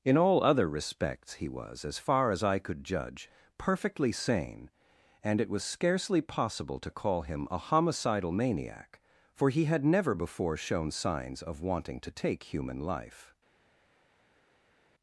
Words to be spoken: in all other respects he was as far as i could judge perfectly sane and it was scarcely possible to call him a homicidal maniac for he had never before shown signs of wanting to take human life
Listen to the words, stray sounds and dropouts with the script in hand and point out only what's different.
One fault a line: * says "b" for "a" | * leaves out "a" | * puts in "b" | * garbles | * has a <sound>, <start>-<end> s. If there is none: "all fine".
all fine